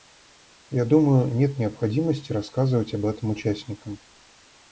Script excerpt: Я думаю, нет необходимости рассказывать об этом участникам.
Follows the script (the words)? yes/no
yes